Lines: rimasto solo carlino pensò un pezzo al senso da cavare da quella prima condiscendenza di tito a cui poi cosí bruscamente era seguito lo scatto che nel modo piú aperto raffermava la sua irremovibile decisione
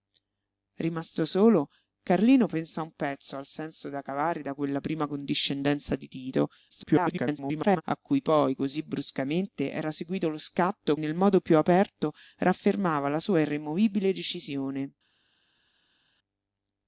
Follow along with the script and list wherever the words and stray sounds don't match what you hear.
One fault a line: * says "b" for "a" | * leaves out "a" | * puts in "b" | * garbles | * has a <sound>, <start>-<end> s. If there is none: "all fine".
* garbles
* leaves out "che"